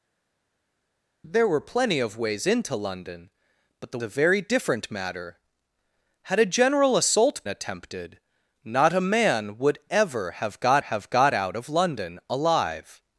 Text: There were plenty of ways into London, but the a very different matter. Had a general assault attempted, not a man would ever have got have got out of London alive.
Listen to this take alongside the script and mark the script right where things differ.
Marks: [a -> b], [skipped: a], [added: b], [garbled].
There were plenty of ways into London, but the a very different matter. Had a general assault attempted, not a man would ever have got have got out of London alive.